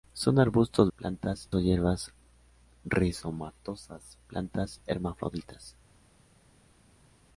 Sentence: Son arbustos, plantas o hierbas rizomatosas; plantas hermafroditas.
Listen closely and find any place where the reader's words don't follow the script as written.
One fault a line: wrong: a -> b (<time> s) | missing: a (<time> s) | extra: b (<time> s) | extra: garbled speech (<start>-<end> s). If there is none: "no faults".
no faults